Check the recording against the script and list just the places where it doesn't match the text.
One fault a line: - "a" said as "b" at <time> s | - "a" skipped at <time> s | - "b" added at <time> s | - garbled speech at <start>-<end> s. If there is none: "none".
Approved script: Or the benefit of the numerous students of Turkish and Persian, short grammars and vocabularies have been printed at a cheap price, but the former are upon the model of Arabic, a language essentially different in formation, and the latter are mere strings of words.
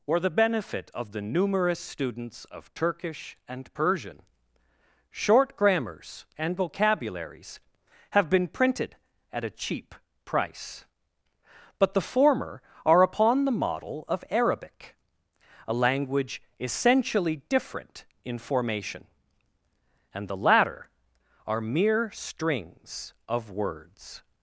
none